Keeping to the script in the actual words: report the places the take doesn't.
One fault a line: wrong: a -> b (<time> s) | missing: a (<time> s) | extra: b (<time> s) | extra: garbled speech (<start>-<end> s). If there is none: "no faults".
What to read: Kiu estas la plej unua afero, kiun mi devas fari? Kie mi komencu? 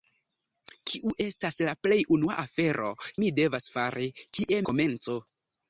missing: kiun (2.9 s)
missing: mi (4.6 s)